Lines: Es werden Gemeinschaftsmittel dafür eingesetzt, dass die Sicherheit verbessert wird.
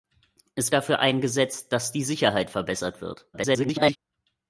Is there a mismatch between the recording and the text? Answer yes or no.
yes